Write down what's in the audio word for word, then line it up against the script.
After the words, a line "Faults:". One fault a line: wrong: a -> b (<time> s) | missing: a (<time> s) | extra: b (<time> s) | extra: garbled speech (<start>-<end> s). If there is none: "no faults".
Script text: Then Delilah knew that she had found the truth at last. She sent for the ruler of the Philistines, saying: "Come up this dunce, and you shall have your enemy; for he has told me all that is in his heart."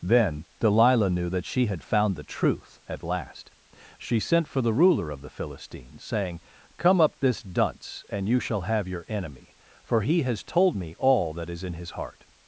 Then Delilah knew that she had found the truth at last. She sent for the ruler of the Philistines, saying: "Come up this dunce, and you shall have your enemy; for he has told me all that is in his heart."
Faults:
no faults